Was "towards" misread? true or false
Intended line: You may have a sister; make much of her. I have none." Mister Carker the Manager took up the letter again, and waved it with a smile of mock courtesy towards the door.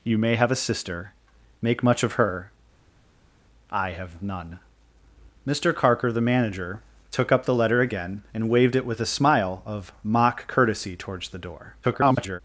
false